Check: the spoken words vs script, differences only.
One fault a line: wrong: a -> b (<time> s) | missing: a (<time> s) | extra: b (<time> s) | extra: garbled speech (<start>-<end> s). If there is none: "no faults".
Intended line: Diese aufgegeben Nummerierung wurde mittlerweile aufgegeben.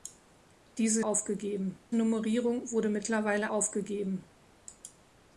no faults